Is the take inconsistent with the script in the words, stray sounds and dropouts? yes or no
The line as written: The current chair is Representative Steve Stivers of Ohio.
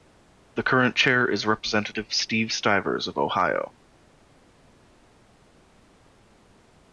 no